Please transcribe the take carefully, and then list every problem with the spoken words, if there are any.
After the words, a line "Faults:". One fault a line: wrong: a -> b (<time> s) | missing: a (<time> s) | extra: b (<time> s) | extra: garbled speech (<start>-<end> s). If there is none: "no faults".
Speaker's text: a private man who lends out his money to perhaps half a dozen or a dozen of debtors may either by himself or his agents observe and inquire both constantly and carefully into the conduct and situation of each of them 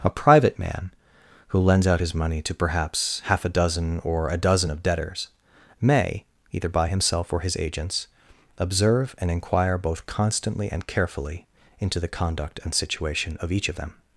a private man who lends out his money to perhaps half a dozen or a dozen of debtors may either by himself or his agents observe and inquire both constantly and carefully into the conduct and situation of each of them
Faults:
no faults